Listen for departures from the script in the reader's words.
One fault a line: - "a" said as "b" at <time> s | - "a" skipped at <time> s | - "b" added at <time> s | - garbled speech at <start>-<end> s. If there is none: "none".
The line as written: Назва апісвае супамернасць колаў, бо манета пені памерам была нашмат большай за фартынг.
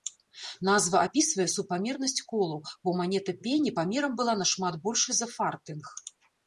none